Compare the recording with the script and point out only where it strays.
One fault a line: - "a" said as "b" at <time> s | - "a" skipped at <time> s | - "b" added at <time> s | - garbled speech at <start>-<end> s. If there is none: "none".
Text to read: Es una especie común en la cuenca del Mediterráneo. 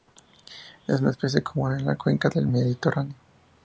none